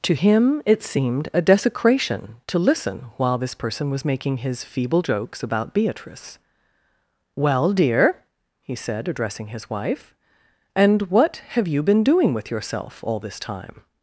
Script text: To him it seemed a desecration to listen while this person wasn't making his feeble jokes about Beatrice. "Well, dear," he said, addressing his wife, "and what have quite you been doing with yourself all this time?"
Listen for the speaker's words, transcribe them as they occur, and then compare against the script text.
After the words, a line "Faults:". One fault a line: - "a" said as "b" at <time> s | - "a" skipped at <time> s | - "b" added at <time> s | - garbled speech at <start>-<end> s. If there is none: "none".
To him it seemed a desecration to listen while this person was making his feeble jokes about Beatrice. "Well, dear," he said, addressing his wife, "and what have you been doing with yourself all this time?"
Faults:
- "wasn't" said as "was" at 3.9 s
- "quite" skipped at 11.7 s